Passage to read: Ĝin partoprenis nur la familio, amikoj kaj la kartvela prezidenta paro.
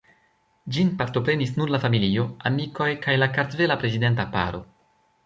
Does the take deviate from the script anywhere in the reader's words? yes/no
no